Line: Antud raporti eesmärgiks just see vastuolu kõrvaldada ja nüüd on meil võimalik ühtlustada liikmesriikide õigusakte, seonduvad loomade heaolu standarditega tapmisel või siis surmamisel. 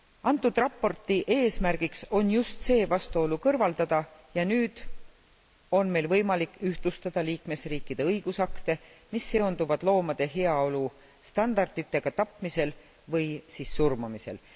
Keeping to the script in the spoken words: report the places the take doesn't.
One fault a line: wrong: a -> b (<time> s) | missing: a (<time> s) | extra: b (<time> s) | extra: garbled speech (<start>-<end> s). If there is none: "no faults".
extra: on (2.2 s)
extra: mis (9.1 s)